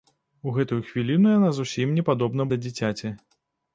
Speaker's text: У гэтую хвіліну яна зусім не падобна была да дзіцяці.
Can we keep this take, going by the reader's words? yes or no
no